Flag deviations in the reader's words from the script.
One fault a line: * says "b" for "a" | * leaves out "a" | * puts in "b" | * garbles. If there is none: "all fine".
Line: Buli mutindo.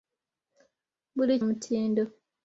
all fine